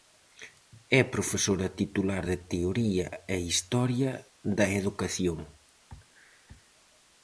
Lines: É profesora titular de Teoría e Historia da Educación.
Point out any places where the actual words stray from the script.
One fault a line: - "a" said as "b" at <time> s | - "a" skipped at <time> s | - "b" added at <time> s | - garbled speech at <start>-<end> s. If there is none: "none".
none